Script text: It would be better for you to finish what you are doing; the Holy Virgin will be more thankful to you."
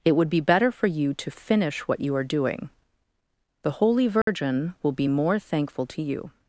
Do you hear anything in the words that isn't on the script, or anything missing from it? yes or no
no